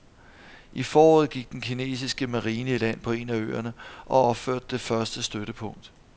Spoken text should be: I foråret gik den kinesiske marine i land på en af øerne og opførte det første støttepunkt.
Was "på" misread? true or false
false